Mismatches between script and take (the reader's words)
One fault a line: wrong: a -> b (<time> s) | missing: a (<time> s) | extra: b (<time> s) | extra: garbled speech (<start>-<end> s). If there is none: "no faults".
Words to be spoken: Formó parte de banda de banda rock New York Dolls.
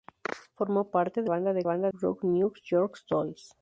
no faults